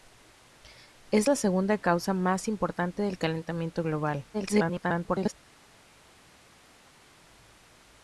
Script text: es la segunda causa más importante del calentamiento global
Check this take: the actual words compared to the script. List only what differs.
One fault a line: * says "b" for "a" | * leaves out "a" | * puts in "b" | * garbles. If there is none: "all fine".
* garbles